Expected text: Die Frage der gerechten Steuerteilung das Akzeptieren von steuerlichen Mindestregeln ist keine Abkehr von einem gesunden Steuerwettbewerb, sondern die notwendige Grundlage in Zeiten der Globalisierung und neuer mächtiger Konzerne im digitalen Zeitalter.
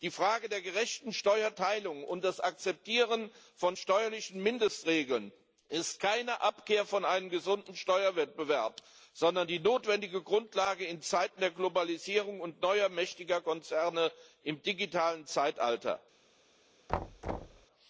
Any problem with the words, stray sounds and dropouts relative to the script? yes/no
yes